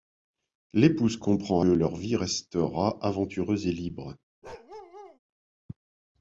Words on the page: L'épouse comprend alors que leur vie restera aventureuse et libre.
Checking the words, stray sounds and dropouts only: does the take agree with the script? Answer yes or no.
no